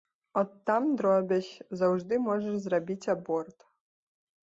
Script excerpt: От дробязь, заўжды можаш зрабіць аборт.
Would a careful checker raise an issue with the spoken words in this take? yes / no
yes